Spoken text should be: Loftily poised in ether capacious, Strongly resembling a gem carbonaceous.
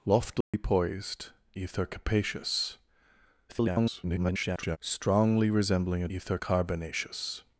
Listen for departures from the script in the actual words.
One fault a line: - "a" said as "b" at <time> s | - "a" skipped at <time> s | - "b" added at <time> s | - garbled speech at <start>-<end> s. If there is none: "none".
- "in" skipped at 1.3 s
- garbled speech at 3.5-4.8 s
- "gem" said as "ether" at 6.1 s